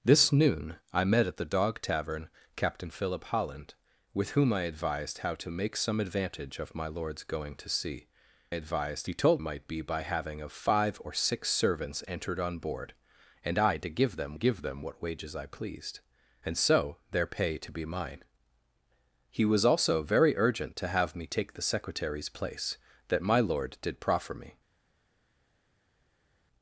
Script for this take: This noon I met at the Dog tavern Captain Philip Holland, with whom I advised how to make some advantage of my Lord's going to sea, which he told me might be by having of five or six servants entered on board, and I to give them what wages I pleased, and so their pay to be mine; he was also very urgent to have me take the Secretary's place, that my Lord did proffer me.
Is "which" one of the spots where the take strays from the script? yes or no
yes